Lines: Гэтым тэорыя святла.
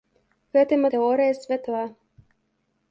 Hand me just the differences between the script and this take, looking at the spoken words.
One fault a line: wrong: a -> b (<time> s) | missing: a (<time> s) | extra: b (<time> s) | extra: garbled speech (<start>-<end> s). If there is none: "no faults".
no faults